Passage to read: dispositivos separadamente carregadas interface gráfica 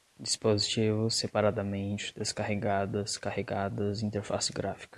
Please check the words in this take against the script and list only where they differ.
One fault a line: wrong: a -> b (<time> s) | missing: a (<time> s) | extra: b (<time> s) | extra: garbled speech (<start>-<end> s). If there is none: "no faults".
extra: descarregadas (2.2 s)